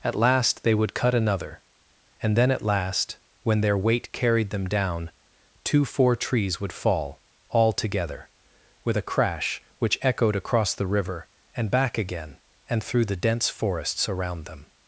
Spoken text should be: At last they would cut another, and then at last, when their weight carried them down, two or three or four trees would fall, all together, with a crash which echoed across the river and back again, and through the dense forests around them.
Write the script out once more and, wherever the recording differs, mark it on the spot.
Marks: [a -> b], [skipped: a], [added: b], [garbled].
At last they would cut another, and then at last, when their weight carried them down, two [skipped: or three or] four trees would fall, all together, with a crash which echoed across the river and back again, and through the dense forests around them.